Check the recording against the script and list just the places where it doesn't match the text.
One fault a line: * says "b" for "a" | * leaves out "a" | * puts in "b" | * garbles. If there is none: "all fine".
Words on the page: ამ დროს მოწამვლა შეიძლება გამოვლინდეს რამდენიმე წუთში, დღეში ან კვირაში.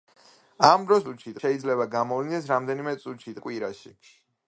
* says "წუთში" for "მოწამვლა"
* leaves out "დღეში"